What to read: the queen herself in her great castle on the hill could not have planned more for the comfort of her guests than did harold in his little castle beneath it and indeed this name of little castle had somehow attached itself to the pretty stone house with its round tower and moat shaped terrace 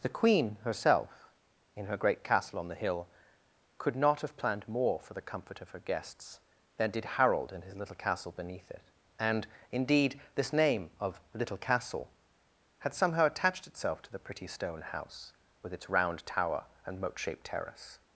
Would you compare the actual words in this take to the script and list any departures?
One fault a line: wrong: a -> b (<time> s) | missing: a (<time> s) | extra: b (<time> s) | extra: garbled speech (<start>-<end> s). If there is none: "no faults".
no faults